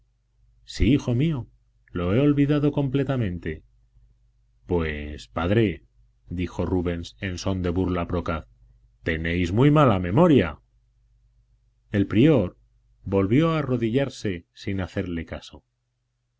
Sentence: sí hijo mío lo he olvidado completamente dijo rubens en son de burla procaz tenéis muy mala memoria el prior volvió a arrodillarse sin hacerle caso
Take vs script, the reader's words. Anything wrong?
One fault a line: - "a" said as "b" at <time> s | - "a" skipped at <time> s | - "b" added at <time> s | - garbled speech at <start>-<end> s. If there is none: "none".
- "pues padre" added at 4.7 s